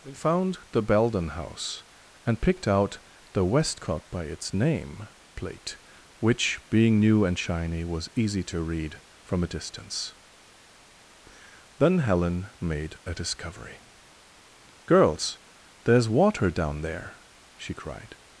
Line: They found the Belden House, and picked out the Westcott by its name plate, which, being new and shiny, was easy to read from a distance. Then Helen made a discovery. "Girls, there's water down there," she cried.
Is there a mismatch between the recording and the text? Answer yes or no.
no